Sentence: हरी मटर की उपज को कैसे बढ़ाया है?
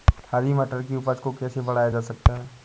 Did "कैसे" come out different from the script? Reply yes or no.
no